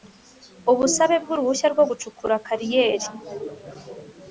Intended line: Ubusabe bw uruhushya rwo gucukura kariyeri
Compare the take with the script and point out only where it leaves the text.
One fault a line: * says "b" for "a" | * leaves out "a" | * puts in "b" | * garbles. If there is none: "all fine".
all fine